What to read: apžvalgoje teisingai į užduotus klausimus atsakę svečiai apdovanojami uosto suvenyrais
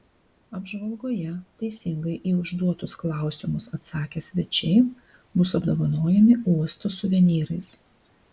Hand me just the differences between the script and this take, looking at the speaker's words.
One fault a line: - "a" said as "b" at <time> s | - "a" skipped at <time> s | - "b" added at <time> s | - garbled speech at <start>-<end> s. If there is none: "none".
- "bus" added at 5.4 s